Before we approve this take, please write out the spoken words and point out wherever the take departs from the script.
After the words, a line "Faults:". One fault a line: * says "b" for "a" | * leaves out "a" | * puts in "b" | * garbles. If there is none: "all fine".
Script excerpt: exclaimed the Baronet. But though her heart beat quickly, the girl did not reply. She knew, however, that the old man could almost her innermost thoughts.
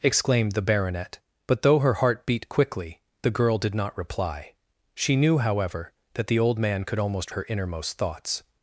exclaimed the Baronet. But though her heart beat quickly, the girl did not reply. She knew, however, that the old man could almost her innermost thoughts.
Faults:
all fine